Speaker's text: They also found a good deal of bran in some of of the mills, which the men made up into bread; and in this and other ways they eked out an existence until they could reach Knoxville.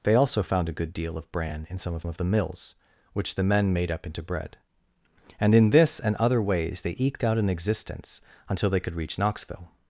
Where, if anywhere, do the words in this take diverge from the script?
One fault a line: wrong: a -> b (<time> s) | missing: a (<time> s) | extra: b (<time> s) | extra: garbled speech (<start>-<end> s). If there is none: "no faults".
no faults